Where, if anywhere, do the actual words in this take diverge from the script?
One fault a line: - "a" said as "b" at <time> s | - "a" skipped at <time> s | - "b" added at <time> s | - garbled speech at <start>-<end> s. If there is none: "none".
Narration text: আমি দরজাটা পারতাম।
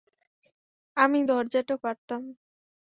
none